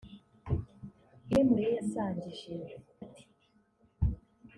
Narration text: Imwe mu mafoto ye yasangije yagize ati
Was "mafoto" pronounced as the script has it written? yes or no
no